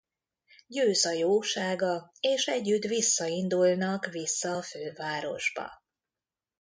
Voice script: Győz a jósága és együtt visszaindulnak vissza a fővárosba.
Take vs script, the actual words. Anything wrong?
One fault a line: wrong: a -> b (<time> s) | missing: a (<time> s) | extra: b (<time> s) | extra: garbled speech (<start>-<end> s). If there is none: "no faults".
no faults